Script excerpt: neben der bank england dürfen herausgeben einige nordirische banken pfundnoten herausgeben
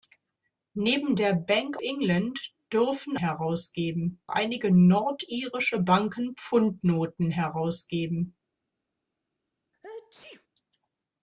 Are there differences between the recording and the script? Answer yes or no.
no